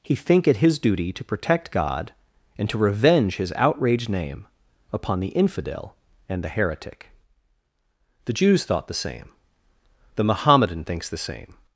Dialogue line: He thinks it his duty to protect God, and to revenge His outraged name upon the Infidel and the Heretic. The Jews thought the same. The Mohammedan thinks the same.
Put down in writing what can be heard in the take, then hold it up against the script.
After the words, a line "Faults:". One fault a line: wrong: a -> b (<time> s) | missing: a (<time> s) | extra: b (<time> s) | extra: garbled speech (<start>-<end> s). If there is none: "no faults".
He think it his duty to protect God, and to revenge His outraged name upon the Infidel and the Heretic. The Jews thought the same. The Mohammedan thinks the same.
Faults:
wrong: thinks -> think (0.1 s)